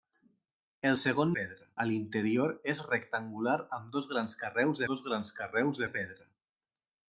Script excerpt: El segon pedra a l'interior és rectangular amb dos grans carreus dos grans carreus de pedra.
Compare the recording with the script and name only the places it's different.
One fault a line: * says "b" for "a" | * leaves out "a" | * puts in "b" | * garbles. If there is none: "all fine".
all fine